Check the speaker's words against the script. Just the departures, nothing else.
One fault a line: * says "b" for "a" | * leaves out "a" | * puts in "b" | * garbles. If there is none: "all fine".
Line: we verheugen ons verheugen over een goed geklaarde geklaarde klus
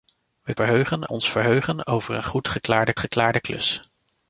all fine